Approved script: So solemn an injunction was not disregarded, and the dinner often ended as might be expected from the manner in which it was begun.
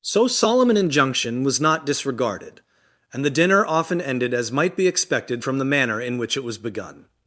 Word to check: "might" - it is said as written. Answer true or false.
true